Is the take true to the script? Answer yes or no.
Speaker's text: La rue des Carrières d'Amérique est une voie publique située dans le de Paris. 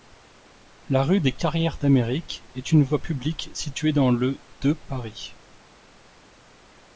yes